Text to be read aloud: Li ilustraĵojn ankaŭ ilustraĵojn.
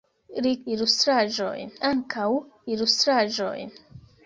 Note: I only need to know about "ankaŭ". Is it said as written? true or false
true